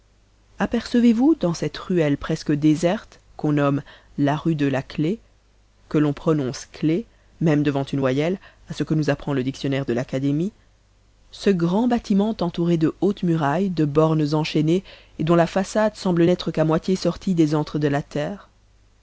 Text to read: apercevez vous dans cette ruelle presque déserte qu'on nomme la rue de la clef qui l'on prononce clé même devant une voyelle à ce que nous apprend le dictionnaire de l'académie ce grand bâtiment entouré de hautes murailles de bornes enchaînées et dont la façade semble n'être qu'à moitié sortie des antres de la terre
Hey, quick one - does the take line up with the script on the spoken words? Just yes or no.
no